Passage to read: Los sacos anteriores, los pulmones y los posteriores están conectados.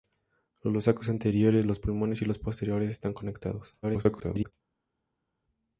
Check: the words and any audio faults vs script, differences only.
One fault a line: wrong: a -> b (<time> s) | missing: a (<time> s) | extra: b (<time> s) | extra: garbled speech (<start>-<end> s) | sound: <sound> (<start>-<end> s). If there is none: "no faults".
extra: garbled speech (3.8-4.5 s)